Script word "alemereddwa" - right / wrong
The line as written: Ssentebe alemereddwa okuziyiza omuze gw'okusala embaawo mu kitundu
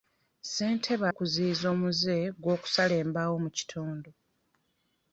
wrong